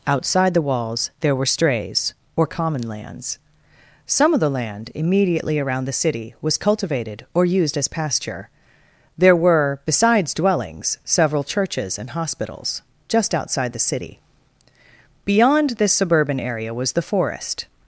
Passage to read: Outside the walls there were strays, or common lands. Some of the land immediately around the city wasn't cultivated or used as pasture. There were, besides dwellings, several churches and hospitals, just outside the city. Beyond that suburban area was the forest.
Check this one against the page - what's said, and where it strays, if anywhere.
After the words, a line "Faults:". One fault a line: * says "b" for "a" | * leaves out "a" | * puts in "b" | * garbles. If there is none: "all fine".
Outside the walls there were strays, or common lands. Some of the land immediately around the city was cultivated or used as pasture. There were, besides dwellings, several churches and hospitals, just outside the city. Beyond this suburban area was the forest.
Faults:
* says "was" for "wasn't"
* says "this" for "that"